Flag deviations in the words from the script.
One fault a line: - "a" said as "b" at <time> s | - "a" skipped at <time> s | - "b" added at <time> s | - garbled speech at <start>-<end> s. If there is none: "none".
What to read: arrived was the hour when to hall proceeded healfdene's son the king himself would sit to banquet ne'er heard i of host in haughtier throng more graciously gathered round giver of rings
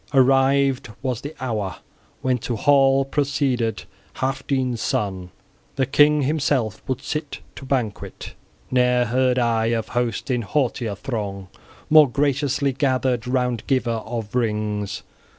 none